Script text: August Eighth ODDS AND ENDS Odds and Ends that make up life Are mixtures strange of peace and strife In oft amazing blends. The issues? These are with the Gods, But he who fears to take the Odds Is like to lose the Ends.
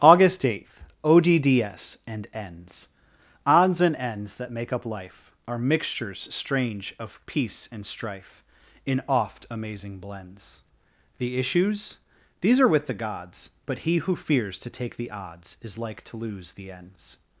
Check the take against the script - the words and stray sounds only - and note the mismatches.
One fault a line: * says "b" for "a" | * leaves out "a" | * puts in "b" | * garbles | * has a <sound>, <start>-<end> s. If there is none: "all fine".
all fine